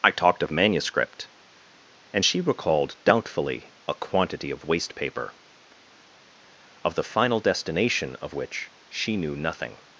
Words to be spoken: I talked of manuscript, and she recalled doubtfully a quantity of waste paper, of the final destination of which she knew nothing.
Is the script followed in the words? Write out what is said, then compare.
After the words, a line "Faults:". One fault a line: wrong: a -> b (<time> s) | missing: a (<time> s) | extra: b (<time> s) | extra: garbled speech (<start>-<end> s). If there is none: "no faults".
I talked of manuscript, and she recalled doubtfully a quantity of waste paper, of the final destination of which she knew nothing.
Faults:
no faults